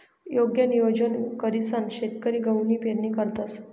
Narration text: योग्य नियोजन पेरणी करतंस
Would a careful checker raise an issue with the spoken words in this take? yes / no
yes